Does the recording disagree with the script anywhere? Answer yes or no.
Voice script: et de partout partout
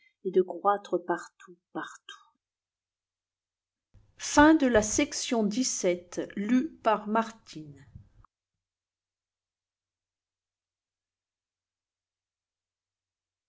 yes